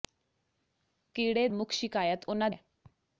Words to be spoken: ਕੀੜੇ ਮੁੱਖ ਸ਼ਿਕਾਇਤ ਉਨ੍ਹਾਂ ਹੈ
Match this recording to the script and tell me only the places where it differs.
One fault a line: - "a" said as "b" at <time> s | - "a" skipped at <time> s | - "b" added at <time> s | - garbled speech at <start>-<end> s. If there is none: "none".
none